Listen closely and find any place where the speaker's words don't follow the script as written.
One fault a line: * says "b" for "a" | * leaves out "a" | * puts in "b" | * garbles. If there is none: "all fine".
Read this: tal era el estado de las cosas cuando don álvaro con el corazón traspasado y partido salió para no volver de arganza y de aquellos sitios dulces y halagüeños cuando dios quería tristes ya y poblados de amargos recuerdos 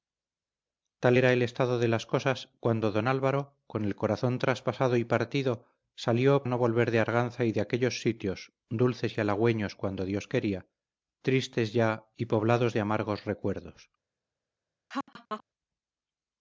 * leaves out "para"